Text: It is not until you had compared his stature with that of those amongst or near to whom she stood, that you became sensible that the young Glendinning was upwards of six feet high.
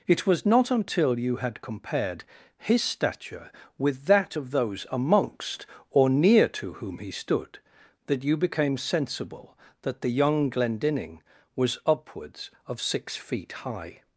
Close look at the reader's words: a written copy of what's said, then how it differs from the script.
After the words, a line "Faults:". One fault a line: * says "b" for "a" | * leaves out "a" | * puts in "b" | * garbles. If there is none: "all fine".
It was not until you had compared his stature with that of those amongst or near to whom he stood, that you became sensible that the young Glendinning was upwards of six feet high.
Faults:
* says "was" for "is"
* says "he" for "she"